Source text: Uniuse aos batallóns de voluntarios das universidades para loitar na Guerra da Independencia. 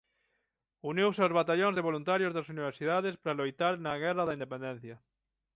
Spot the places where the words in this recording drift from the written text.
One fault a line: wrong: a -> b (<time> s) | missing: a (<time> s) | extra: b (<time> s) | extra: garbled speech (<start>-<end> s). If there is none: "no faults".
no faults